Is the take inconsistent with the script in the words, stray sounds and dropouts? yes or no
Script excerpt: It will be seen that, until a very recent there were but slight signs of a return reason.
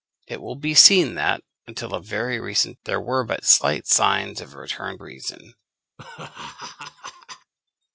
yes